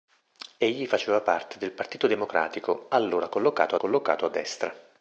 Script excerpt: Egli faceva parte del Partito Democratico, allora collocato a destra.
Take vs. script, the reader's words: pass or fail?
fail